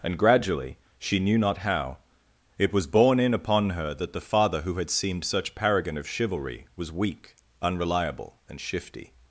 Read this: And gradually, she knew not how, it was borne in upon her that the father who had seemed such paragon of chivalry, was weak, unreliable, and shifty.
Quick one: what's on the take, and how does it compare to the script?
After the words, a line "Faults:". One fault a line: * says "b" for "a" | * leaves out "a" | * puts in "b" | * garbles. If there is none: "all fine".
And gradually, she knew not how, it was borne in upon her that the father who had seemed such paragon of chivalry, was weak, unreliable, and shifty.
Faults:
all fine